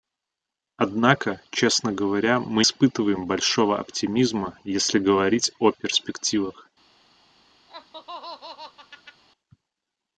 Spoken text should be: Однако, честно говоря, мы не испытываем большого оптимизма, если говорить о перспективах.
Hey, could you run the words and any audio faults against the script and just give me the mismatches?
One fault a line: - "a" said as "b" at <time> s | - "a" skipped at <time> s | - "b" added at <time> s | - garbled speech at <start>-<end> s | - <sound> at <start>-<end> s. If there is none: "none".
- "не" skipped at 2.6 s
- laugh at 7.7-9.2 s